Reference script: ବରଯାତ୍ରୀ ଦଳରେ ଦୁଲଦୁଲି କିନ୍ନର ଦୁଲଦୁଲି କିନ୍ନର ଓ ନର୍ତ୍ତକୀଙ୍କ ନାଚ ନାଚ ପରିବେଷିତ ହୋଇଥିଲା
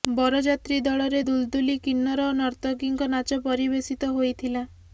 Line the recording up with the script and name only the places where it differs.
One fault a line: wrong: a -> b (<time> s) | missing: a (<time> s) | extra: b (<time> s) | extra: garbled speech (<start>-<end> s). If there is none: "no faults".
missing: ଦୁଲଦୁଲି କିନ୍ନର (2.3 s)
missing: ନାଚ (3.4 s)